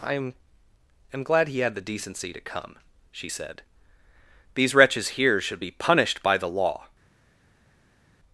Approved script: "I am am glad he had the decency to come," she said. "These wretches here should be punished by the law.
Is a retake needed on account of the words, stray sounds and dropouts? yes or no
no